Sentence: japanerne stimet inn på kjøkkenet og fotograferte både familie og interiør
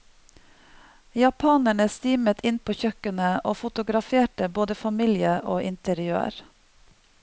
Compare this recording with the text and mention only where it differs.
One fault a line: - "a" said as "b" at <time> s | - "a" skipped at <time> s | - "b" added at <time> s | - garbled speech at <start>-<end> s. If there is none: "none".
none